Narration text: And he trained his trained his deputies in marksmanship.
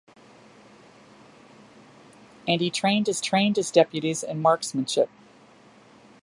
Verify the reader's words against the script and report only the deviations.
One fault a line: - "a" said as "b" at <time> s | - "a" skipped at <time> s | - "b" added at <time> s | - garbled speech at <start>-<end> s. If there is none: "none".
none